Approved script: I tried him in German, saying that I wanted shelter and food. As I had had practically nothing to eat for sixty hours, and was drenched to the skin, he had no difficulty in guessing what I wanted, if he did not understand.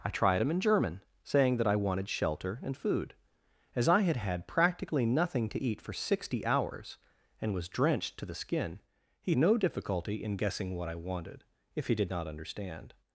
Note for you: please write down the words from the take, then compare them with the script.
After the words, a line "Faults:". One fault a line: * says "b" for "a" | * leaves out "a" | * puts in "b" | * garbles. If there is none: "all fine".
I tried him in German, saying that I wanted shelter and food. As I had had practically nothing to eat for sixty hours, and was drenched to the skin, he no difficulty in guessing what I wanted, if he did not understand.
Faults:
* leaves out "had"